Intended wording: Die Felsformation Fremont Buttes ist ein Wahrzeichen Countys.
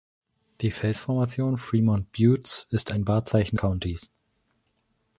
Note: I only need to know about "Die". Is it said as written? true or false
true